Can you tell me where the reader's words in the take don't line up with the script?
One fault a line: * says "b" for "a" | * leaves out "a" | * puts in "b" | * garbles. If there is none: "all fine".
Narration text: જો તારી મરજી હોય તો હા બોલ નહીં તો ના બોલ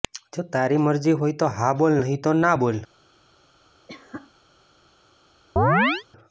all fine